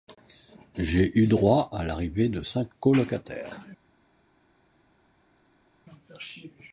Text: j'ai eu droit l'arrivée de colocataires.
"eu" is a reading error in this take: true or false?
false